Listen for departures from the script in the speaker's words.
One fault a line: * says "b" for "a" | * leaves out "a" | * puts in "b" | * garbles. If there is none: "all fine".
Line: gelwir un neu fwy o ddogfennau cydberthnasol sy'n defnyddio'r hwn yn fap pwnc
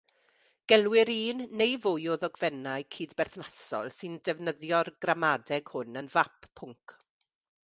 * puts in "gramadeg"